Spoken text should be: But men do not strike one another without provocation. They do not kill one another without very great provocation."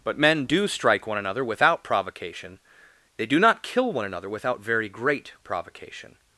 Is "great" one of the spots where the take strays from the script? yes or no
no